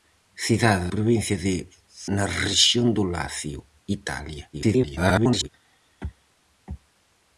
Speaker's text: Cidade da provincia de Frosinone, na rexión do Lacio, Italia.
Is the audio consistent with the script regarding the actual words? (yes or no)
no